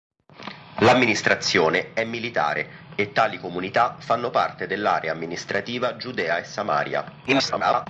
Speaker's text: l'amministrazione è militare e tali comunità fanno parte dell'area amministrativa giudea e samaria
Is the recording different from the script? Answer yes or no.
yes